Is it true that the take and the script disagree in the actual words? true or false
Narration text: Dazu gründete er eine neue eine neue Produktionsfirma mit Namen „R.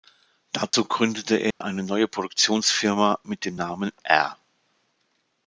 true